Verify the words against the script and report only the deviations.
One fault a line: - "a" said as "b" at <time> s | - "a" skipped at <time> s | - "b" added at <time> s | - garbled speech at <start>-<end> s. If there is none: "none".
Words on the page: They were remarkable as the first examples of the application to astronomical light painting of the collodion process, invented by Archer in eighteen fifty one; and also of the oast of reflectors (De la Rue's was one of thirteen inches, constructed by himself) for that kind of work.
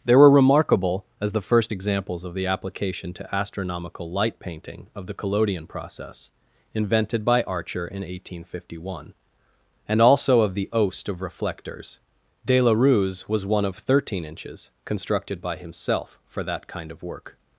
none